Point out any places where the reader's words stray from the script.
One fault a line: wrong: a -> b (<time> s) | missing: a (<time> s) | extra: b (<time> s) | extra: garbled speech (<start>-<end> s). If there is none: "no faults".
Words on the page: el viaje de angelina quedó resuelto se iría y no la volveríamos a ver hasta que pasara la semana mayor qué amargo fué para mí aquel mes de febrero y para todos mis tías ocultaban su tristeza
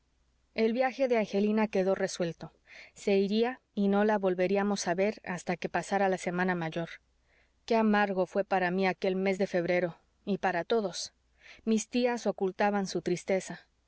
no faults